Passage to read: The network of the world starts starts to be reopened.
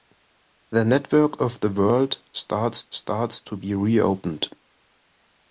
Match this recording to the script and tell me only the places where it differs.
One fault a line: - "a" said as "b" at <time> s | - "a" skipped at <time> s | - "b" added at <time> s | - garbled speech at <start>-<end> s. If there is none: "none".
none